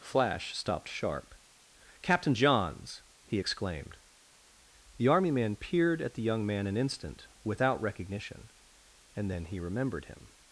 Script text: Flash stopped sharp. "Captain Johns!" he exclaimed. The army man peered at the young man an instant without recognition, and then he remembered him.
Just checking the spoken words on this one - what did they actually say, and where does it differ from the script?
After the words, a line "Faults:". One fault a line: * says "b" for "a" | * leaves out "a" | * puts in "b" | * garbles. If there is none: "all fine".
Flash stopped sharp. "Captain Johns!" he exclaimed. The army man peered at the young man an instant without recognition, and then he remembered him.
Faults:
all fine